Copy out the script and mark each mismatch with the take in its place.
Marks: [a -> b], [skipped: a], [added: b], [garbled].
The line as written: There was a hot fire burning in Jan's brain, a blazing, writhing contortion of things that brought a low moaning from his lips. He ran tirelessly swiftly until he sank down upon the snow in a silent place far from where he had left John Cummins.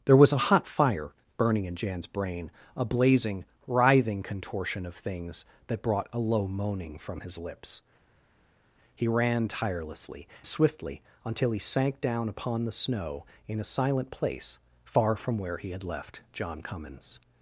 There was a hot fire burning in Jan's brain, a blazing, writhing contortion of things that brought a low moaning from his lips. He ran tirelessly swiftly until he sank down upon the snow in a silent place far from where he had left John Cummins.